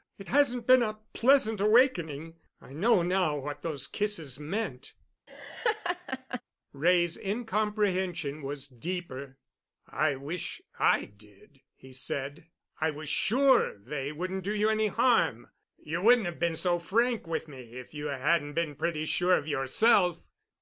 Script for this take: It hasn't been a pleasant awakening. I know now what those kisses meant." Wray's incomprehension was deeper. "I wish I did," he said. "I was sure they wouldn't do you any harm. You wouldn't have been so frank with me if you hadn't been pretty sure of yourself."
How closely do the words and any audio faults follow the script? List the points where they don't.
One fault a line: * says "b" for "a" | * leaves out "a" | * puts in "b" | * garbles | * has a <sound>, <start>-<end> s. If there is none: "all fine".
* has a laugh, 5.3-6.4 s